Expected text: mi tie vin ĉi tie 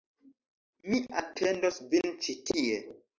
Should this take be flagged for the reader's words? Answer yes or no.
yes